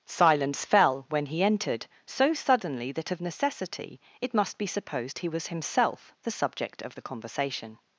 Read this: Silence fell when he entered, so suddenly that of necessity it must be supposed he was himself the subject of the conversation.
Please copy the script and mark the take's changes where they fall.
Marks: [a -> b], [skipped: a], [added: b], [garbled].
Silence fell when he entered, so suddenly that of necessity it must be supposed he was himself the subject of the conversation.